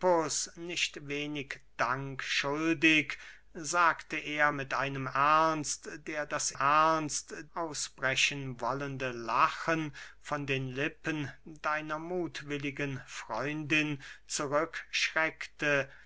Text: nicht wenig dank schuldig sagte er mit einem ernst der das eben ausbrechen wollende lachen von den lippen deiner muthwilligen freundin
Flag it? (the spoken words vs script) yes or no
yes